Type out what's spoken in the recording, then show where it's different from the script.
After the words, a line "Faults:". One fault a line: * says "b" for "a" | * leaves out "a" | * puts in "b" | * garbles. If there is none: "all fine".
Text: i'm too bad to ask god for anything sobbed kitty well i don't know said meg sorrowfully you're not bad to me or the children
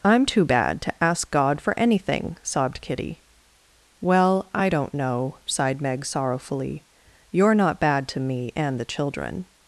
i'm too bad to ask god for anything sobbed kitty well i don't know sighed meg sorrowfully you're not bad to me and the children
Faults:
* says "sighed" for "said"
* says "and" for "or"